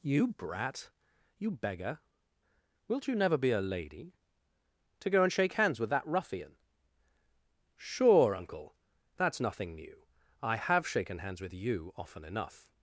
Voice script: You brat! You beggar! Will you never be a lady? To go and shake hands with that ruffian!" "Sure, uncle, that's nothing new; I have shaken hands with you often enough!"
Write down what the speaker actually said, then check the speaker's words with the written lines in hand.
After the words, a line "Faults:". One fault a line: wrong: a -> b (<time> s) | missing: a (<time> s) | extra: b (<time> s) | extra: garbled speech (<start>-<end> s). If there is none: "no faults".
You brat! You beggar! Wilt you never be a lady? To go and shake hands with that ruffian!" "Sure, uncle, that's nothing new; I have shaken hands with you often enough!"
Faults:
wrong: Will -> Wilt (2.9 s)